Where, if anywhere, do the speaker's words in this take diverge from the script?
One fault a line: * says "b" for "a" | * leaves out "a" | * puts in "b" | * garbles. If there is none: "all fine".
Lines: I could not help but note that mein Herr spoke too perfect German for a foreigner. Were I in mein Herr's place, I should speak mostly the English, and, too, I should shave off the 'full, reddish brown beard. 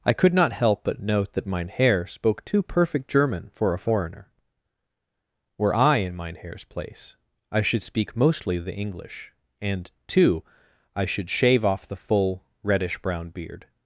all fine